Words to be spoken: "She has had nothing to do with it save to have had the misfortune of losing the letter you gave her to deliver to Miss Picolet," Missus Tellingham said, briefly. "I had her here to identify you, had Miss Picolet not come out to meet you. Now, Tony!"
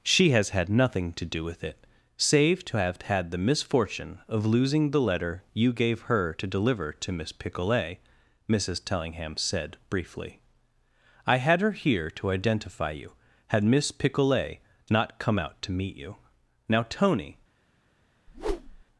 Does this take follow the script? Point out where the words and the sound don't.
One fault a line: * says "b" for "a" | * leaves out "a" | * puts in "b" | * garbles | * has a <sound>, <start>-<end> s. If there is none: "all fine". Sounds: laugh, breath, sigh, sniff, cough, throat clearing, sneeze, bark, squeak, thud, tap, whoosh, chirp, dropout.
* has a whoosh, 18.3-18.8 s